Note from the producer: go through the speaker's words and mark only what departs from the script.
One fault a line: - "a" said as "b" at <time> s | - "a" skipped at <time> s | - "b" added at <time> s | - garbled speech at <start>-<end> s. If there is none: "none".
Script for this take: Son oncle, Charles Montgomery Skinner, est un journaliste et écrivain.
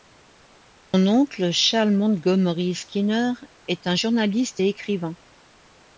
none